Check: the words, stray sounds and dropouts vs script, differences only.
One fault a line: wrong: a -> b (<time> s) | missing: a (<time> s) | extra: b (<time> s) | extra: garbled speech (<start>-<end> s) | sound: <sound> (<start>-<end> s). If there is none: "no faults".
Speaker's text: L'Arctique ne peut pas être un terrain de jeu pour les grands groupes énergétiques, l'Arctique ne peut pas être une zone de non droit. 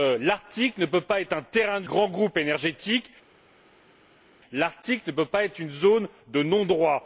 missing: jeu pour les (1.9 s)